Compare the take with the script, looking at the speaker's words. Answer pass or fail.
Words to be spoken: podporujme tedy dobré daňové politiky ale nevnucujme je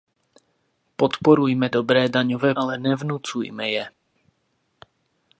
fail